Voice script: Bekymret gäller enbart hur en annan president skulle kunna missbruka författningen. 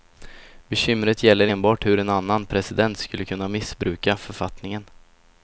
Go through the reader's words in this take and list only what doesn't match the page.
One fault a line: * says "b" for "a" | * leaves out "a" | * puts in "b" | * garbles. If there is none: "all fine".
all fine